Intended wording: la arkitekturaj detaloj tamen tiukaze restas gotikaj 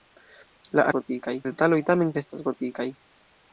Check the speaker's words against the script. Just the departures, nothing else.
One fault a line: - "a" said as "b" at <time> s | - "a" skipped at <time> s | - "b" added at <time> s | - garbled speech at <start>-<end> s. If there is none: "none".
- "arkitekturaj" said as "gotikaj" at 1.0 s
- "tiukaze" skipped at 2.1 s